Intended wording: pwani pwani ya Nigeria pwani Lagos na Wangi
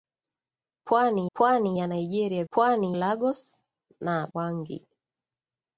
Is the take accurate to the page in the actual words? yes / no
yes